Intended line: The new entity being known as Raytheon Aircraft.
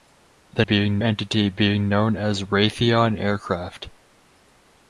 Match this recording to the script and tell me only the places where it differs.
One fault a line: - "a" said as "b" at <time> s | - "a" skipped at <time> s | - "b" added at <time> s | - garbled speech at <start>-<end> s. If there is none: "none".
- "new" said as "being" at 0.6 s